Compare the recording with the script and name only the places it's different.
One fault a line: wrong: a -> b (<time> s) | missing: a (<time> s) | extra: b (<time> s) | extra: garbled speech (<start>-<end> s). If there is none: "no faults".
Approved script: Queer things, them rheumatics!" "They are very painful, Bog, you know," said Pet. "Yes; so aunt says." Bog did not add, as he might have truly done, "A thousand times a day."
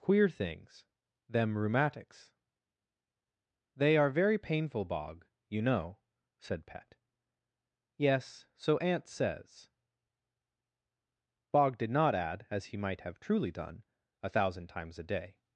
no faults